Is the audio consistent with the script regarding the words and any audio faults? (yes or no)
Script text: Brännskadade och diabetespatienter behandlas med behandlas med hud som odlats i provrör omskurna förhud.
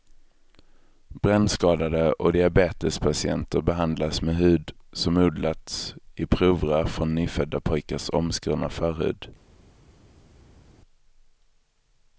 no